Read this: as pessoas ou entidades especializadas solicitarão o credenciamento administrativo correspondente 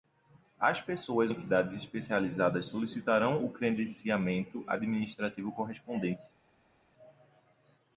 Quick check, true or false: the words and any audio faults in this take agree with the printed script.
false